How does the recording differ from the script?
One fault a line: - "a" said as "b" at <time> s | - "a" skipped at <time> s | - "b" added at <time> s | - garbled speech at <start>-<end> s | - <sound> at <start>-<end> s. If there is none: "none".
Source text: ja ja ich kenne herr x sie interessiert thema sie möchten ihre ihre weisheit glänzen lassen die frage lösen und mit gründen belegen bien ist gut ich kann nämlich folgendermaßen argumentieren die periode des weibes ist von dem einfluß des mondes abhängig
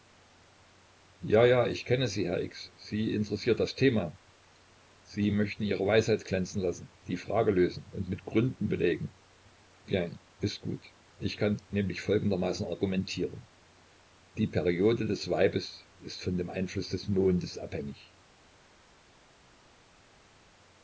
- "sie" added at 2.1 s
- "das" added at 3.6 s
- "ihre" skipped at 5.8 s